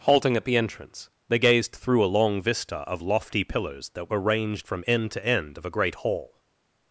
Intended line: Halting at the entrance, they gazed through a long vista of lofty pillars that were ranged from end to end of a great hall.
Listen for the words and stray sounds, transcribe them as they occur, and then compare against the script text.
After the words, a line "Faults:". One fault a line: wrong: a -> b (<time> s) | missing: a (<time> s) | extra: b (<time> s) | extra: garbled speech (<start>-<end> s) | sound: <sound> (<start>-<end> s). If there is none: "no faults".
Halting at the entrance, they gazed through a long vista of lofty pillars that were ranged from end to end of a great hall.
Faults:
no faults